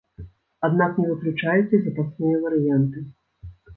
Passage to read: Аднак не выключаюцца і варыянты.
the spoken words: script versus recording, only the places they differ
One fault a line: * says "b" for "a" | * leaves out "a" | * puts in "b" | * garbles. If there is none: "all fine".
* puts in "запасныя"